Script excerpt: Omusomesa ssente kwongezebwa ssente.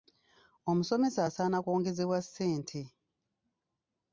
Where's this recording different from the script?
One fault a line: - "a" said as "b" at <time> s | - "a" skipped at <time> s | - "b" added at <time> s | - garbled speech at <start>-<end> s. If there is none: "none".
- "ssente" said as "asaana" at 1.3 s